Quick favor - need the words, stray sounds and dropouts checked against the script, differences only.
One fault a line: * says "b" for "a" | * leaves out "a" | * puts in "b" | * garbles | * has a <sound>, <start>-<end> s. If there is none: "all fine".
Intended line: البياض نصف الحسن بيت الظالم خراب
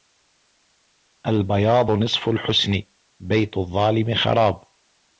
all fine